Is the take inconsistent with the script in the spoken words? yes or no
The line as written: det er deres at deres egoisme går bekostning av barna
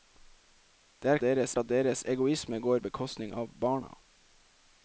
no